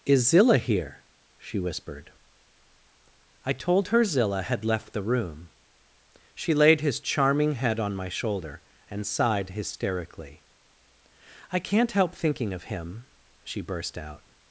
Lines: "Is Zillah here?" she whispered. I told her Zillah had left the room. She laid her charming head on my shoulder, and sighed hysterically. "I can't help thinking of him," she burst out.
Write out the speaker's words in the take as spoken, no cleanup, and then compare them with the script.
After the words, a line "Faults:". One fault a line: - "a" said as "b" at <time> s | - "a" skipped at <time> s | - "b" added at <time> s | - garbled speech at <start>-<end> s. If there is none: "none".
"Is Zillah here?" she whispered. I told her Zillah had left the room. She laid his charming head on my shoulder, and sighed hysterically. "I can't help thinking of him," she burst out.
Faults:
- "her" said as "his" at 6.8 s